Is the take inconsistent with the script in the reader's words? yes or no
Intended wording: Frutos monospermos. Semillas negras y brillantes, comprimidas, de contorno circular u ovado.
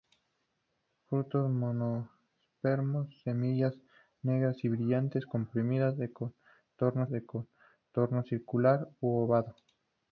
yes